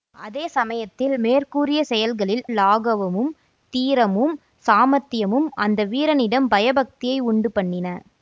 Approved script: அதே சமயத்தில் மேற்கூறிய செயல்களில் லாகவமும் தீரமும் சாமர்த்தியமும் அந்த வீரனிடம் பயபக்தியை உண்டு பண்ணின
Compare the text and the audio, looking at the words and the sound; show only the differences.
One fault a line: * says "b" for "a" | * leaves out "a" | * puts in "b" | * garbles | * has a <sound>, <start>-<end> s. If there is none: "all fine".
all fine